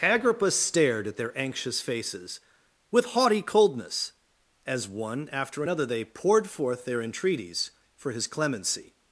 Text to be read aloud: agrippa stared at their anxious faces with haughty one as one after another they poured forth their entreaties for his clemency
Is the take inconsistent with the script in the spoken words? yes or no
yes